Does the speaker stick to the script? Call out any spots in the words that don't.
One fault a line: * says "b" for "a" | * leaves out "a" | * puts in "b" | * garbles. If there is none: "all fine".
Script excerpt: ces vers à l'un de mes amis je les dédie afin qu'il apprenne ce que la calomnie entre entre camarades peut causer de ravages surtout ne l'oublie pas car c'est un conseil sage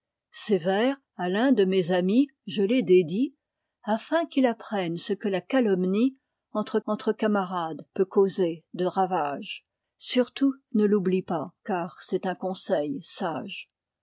all fine